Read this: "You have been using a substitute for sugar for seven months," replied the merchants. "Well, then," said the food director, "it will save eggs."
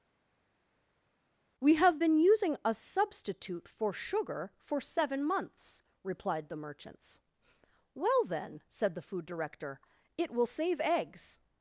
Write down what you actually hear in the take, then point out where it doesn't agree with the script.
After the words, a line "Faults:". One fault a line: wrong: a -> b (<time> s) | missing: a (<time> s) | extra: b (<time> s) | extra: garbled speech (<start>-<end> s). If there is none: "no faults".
"We have been using a substitute for sugar for seven months," replied the merchants. "Well, then," said the food director, "it will save eggs."
Faults:
wrong: You -> We (1.6 s)